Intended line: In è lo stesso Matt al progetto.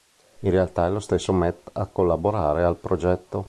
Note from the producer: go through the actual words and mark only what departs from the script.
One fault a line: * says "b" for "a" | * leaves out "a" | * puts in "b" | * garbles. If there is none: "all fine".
* puts in "realtà"
* puts in "a collaborare"